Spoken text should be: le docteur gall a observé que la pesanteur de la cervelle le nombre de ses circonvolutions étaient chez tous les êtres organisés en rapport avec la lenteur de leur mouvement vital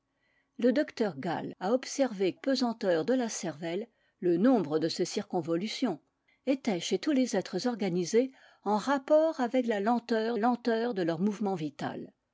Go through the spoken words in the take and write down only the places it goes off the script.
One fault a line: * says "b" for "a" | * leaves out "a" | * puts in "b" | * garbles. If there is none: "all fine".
* leaves out "que la"
* puts in "lenteur"